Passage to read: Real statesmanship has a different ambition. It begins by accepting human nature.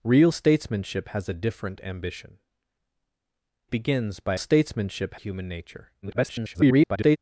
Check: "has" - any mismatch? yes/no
no